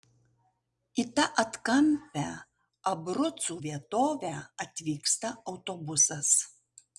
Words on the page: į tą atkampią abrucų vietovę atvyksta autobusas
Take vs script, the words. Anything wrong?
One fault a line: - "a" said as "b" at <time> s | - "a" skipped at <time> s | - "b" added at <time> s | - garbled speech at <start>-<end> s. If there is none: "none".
none